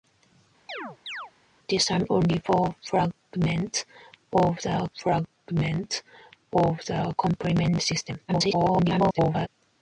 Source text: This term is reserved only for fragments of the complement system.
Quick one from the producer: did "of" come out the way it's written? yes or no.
yes